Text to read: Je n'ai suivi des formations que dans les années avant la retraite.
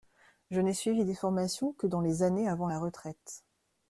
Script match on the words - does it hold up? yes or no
yes